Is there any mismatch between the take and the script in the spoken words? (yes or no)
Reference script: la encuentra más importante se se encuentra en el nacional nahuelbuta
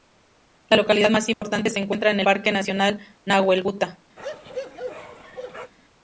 yes